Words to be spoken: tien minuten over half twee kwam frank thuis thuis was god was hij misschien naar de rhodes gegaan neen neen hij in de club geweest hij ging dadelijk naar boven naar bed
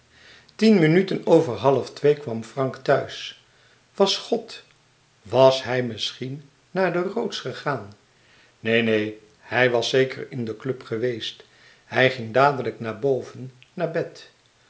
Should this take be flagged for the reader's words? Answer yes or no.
yes